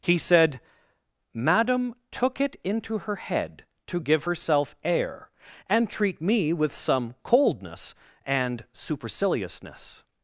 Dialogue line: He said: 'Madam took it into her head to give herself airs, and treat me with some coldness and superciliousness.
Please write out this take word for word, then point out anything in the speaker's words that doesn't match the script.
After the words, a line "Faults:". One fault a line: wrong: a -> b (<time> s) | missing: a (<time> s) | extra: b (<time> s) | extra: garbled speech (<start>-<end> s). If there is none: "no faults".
He said: 'Madam took it into her head to give herself air, and treat me with some coldness and superciliousness.
Faults:
wrong: airs -> air (4.8 s)